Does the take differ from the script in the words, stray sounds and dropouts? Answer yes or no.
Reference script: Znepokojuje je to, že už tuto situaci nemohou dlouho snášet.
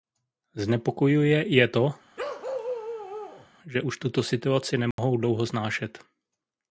yes